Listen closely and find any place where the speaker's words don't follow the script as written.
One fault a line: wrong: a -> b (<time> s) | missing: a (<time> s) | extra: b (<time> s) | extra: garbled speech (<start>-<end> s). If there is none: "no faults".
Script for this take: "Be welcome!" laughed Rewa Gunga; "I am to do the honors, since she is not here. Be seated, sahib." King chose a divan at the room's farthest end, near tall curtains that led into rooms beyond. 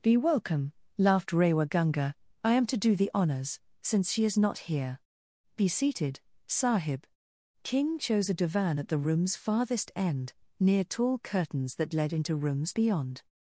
no faults